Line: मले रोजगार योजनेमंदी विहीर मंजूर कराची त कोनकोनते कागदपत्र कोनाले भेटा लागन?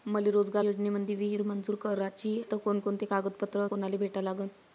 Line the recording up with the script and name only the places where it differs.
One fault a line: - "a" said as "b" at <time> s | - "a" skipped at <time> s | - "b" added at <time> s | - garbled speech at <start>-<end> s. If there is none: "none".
none